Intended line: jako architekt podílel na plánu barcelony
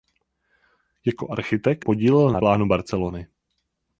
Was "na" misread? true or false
false